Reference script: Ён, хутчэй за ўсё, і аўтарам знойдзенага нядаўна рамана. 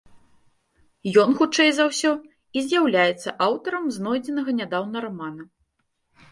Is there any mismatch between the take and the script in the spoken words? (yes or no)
yes